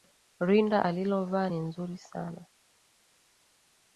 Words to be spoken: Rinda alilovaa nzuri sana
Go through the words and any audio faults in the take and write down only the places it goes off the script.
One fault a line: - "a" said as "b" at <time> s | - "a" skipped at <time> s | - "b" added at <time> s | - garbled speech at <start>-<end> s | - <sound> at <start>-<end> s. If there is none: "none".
- "ni" added at 1.4 s